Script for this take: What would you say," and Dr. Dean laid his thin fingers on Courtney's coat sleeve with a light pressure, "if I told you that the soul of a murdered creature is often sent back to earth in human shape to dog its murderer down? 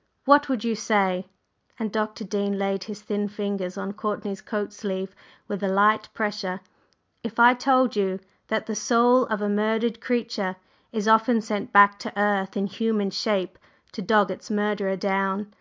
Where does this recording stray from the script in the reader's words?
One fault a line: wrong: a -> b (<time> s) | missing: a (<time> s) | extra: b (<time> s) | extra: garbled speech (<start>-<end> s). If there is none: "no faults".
no faults